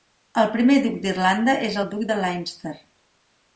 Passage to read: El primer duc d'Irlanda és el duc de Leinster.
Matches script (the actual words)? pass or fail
pass